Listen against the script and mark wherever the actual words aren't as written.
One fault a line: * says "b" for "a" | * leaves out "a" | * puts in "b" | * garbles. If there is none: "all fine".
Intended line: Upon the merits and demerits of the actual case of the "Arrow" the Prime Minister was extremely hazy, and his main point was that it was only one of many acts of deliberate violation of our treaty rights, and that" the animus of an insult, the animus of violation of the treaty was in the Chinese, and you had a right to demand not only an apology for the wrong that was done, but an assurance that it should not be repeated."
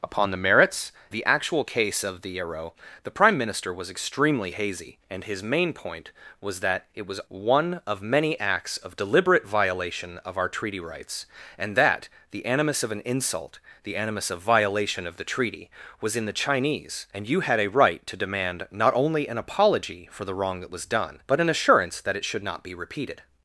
* leaves out "and demerits of"
* leaves out "only"